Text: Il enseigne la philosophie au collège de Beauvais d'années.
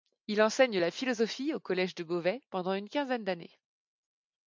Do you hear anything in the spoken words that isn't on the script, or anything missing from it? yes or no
yes